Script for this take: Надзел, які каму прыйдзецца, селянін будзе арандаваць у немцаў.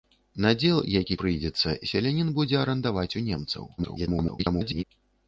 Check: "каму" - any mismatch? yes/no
yes